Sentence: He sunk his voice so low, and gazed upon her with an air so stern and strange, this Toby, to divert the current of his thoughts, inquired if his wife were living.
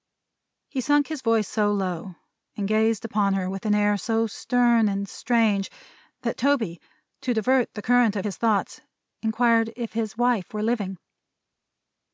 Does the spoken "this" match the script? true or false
false